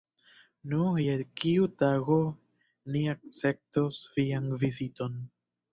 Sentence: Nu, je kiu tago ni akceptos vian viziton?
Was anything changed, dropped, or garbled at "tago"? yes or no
no